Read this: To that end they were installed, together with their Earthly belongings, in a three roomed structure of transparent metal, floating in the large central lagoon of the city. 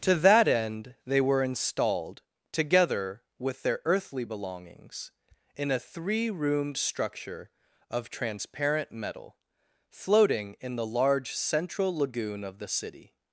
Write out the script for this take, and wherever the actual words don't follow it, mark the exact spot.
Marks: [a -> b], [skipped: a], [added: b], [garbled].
To that end they were installed, together with their Earthly belongings, in a three roomed structure of transparent metal, floating in the large central lagoon of the city.